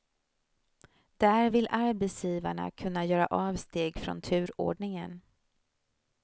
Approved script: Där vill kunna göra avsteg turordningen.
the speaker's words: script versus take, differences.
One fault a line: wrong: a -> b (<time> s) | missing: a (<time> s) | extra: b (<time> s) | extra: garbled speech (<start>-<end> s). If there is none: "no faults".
extra: arbetsgivarna (1.7 s)
extra: från (4.0 s)